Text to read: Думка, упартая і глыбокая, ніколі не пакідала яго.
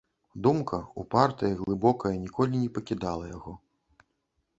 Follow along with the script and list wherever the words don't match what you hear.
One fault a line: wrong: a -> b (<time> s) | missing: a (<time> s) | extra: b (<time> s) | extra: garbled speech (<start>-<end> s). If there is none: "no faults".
no faults